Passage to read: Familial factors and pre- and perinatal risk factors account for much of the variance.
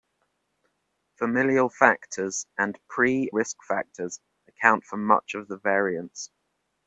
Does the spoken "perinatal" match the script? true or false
false